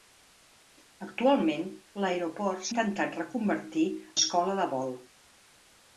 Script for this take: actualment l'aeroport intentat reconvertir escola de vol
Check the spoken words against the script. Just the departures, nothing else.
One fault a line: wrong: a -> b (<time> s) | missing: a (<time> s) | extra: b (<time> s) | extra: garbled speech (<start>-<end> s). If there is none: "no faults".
no faults